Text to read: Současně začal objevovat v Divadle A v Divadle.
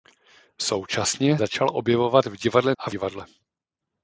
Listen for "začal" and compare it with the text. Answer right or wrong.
right